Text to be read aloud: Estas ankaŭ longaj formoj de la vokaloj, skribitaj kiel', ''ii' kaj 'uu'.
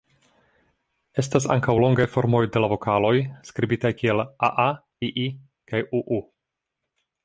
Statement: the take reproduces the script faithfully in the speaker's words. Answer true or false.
false